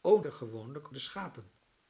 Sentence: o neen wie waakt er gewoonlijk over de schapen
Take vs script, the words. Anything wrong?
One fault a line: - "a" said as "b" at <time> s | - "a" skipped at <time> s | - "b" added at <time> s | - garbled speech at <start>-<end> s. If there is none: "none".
- "neen wie waakt" skipped at 0.2 s
- "over" skipped at 0.9 s